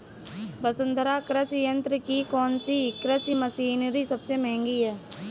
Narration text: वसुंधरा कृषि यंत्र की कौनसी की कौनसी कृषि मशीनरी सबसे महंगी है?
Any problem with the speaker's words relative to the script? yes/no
yes